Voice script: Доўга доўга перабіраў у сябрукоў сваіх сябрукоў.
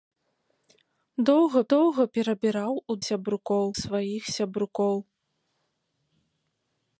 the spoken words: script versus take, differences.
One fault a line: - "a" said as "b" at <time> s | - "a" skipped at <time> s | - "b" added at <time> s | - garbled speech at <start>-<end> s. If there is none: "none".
none